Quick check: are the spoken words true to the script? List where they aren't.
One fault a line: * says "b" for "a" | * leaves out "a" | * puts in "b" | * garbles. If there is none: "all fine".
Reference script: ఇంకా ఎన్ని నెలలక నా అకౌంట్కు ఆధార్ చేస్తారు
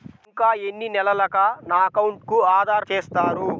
all fine